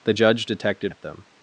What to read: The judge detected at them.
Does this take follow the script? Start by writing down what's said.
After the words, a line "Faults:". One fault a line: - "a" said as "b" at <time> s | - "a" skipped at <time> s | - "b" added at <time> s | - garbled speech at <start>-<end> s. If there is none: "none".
The judge detected at them.
Faults:
none